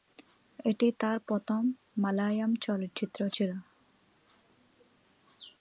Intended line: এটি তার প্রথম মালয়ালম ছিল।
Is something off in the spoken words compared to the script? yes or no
yes